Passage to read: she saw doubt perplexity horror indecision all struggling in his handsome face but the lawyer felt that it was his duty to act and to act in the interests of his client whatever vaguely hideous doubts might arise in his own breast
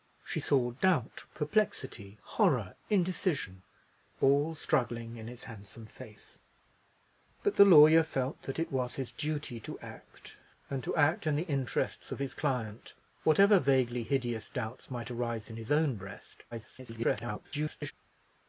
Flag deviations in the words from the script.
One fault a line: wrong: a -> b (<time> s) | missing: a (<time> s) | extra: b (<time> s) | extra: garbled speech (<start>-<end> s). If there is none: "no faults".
extra: garbled speech (16.5-17.9 s)